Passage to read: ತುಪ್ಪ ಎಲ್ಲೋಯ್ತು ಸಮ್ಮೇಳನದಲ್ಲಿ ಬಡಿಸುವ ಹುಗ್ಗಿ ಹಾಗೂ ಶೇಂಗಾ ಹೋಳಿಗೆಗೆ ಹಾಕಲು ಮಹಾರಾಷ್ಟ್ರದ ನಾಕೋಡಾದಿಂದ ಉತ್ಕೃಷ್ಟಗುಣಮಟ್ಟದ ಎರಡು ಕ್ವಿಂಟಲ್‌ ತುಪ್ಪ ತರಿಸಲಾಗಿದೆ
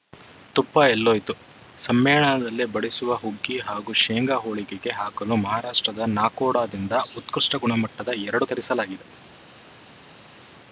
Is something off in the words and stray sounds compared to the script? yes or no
yes